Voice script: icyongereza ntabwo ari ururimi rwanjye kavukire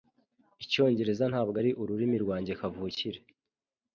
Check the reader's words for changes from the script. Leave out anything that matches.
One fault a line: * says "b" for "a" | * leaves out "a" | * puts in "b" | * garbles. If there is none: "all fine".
all fine